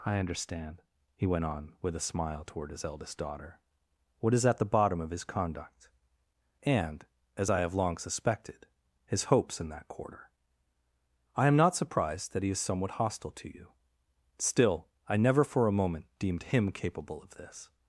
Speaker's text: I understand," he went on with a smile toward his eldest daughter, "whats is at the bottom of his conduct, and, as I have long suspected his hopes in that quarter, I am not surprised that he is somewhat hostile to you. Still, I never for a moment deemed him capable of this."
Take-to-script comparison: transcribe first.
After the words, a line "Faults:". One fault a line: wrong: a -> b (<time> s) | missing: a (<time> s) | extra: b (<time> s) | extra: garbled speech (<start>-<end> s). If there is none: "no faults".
I understand," he went on with a smile toward his eldest daughter, "what is at the bottom of his conduct, and, as I have long suspected his hopes in that quarter, I am not surprised that he is somewhat hostile to you. Still, I never for a moment deemed him capable of this."
Faults:
wrong: whats -> what (4.2 s)